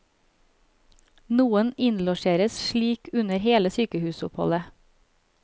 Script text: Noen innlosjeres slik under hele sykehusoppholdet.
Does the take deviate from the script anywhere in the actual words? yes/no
no